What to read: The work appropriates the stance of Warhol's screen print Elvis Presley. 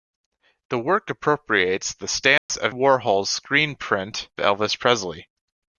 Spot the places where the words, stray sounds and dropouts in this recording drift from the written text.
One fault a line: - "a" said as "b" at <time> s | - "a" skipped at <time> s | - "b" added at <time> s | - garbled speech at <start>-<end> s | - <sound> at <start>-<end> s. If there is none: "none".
- dropout at 2.4-2.5 s